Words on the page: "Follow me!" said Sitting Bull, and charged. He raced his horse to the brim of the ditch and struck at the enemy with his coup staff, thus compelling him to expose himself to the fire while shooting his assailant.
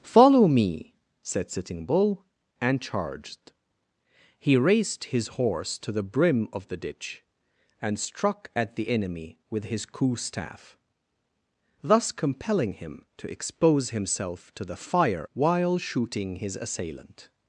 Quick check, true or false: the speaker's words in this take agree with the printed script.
true